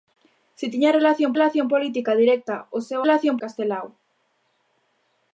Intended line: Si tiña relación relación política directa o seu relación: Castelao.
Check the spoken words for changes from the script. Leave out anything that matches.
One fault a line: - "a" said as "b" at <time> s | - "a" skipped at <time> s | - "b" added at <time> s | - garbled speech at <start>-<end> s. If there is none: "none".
none